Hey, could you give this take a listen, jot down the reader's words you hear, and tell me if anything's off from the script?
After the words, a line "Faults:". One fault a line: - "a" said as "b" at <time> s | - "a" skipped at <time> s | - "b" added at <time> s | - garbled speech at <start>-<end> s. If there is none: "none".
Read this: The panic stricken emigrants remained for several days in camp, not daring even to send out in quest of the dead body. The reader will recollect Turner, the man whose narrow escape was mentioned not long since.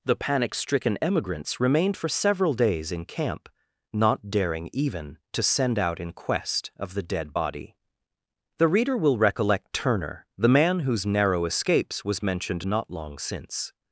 The panic stricken emigrants remained for several days in camp, not daring even to send out in quest of the dead body. The reader will recollect Turner, the man whose narrow escapes was mentioned not long since.
Faults:
- "escape" said as "escapes" at 11.4 s